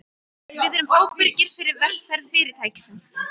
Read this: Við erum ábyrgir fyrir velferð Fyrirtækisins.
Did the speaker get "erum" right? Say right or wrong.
right